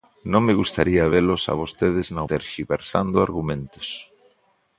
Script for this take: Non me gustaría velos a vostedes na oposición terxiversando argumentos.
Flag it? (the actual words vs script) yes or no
yes